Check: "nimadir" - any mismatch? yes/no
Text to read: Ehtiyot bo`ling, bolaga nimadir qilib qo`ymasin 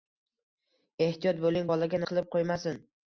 yes